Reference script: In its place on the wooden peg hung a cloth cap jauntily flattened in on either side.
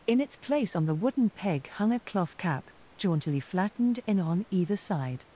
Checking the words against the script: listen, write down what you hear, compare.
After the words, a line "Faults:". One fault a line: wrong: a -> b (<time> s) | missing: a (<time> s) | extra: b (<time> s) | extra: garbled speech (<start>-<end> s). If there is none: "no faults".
In its place on the wooden peg hung a cloth cap jauntily flattened in on either side.
Faults:
no faults